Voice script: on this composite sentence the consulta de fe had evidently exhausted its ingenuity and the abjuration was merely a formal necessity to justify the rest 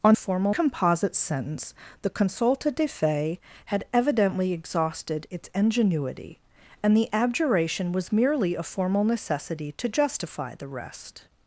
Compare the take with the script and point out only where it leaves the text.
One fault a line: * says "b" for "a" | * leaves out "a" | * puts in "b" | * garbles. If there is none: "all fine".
* says "formal" for "this"